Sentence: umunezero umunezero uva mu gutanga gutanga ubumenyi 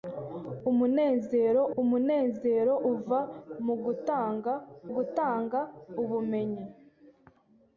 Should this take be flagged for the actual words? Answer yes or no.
no